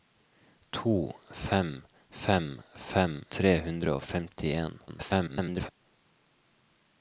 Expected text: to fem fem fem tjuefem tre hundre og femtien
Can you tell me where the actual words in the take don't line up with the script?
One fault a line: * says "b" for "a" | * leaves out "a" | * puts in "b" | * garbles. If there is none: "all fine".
* leaves out "tjuefem"
* garbles